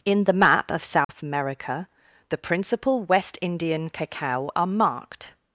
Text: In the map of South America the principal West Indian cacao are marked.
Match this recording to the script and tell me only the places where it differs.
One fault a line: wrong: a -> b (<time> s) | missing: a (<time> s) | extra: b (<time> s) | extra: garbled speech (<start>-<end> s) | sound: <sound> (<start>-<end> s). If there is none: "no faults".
sound: dropout (1.0-1.1 s)